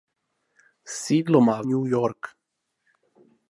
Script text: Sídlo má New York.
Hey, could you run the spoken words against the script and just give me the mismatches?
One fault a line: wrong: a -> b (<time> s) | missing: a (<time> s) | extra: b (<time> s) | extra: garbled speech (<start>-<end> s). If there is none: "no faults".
no faults